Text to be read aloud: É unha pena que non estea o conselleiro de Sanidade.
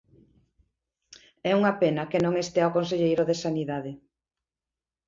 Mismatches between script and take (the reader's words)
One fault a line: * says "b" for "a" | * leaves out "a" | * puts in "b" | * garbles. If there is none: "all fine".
all fine